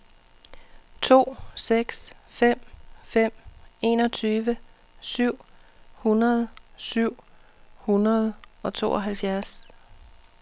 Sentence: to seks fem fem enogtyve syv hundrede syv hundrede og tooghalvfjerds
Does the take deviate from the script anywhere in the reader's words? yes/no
no